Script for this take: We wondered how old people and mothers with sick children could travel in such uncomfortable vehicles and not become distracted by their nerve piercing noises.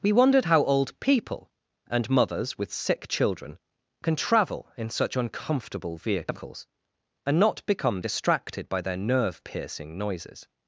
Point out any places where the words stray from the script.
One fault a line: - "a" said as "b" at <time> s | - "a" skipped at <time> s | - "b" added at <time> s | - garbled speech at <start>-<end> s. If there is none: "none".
- "could" said as "can" at 4.0 s